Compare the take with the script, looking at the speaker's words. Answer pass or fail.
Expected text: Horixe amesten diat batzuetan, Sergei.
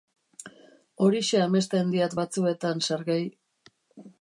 pass